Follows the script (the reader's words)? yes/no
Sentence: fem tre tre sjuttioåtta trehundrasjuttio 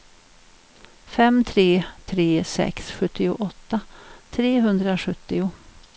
no